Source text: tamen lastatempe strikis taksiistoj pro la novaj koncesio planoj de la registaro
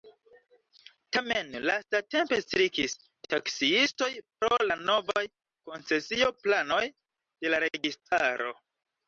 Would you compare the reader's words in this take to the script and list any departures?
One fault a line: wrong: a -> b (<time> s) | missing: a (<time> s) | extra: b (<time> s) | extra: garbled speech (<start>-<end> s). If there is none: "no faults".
no faults